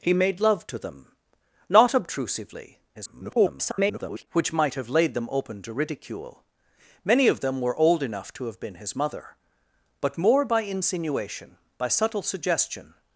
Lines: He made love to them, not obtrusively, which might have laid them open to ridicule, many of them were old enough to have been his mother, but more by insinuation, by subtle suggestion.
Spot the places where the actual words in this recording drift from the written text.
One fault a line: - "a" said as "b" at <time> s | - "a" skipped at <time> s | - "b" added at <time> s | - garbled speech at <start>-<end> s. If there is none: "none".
- garbled speech at 2.9-4.3 s